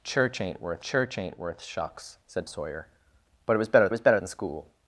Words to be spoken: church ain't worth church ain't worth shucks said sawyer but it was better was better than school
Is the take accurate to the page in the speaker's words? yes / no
yes